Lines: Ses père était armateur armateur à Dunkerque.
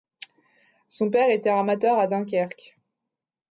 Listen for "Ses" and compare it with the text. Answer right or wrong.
wrong